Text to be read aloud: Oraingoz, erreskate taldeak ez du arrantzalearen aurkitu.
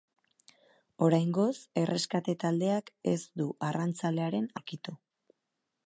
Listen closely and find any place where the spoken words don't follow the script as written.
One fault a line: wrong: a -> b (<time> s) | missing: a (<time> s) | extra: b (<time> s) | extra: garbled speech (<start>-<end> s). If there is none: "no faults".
no faults